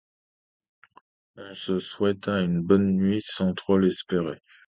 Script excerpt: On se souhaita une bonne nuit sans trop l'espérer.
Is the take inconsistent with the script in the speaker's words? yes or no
no